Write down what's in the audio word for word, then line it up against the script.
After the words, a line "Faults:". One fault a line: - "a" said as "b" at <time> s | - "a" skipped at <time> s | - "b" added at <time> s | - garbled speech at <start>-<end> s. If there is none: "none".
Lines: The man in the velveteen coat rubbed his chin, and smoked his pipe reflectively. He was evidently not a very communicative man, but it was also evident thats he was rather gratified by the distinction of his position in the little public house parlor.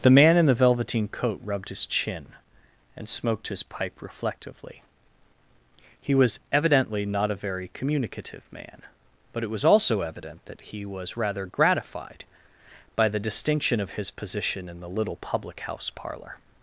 The man in the velveteen coat rubbed his chin, and smoked his pipe reflectively. He was evidently not a very communicative man, but it was also evident that he was rather gratified by the distinction of his position in the little public house parlor.
Faults:
- "thats" said as "that" at 10.4 s